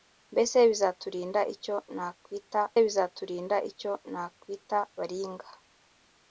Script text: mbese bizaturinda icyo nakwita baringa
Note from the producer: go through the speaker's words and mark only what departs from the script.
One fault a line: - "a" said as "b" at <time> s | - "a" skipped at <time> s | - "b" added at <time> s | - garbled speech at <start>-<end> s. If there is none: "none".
- "bizaturinda icyo nakwita" added at 2.8 s